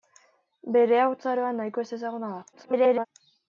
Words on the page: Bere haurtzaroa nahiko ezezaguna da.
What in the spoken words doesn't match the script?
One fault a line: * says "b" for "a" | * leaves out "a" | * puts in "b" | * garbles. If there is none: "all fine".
* garbles